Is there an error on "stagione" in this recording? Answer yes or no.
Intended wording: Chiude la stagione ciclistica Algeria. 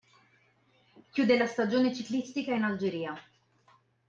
no